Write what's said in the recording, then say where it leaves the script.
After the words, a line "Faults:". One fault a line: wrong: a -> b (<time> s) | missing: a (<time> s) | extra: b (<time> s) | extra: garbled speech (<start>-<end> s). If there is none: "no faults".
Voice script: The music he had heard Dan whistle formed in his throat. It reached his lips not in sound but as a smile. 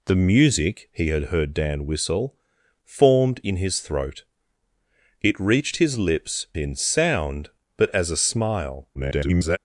The music he had heard Dan whistle formed in his throat. It reached his lips in sound but as a smile. [garbled]
Faults:
missing: not (6.5 s)
extra: garbled speech (8.9-9.6 s)